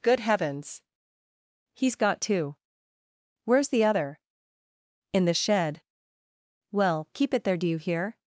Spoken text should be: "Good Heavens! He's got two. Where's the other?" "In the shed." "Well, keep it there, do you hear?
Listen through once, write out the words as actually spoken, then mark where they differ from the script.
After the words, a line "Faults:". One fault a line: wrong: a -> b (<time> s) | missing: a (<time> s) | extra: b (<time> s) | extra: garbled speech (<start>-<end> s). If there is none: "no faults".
"Good Heavens! He's got two. Where's the other?" "In the shed." "Well, keep it there, do you hear?
Faults:
no faults